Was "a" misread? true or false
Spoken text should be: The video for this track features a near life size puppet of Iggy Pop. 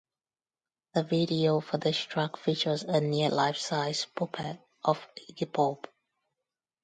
false